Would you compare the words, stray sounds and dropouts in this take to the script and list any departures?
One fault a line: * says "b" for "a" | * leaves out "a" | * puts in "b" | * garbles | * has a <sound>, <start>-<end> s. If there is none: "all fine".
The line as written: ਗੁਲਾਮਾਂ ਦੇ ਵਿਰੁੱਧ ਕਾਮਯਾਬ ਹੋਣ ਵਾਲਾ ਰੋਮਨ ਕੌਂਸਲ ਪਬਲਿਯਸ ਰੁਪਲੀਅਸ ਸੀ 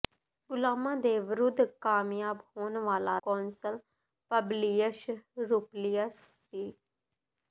* leaves out "ਰੋਮਨ"